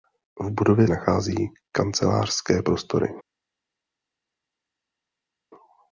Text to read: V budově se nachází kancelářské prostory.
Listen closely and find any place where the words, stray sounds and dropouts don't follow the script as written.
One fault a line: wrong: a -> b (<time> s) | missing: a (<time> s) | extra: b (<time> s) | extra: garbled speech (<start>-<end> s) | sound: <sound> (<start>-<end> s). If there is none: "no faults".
missing: se (0.9 s)